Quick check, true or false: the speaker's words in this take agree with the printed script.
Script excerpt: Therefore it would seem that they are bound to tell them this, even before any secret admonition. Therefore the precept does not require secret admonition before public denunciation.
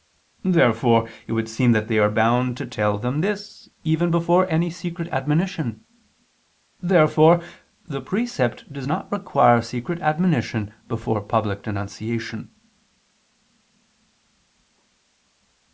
true